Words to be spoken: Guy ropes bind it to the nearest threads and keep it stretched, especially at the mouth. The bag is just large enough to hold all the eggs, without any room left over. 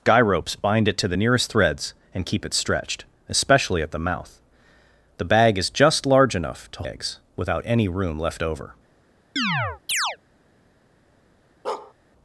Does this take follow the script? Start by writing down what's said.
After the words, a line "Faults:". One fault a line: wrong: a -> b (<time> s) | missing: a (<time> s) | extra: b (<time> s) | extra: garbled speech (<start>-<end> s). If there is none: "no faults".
Guy ropes bind it to the nearest threads and keep it stretched, especially at the mouth. The bag is just large enough to eggs, without any room left over.
Faults:
missing: hold all the (6.8 s)